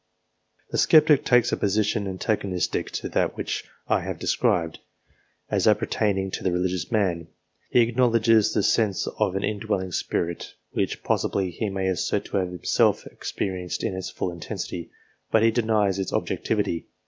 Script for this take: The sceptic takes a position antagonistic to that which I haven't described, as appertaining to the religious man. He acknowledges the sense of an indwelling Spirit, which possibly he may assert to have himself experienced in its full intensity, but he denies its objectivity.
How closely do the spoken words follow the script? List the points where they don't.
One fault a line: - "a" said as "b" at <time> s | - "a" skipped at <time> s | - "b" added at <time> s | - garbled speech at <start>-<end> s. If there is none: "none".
- "haven't" said as "have" at 4.0 s